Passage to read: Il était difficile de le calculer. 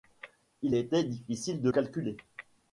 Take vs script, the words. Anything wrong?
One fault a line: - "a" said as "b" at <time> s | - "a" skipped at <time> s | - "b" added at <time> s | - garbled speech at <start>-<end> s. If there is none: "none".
- "le" skipped at 1.7 s